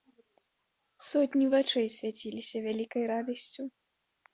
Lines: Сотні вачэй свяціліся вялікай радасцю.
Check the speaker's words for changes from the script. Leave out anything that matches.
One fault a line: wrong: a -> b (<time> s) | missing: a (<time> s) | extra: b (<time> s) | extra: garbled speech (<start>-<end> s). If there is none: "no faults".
no faults